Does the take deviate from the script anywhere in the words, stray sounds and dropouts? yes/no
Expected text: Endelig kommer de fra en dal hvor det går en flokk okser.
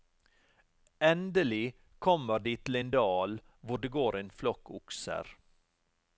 yes